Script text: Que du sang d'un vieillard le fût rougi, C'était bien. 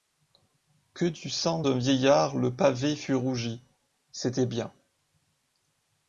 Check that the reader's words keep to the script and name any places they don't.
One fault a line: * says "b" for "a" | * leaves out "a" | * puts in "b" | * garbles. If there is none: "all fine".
* puts in "pavé"